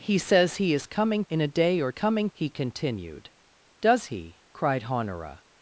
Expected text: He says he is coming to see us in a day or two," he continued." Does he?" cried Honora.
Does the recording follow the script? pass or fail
fail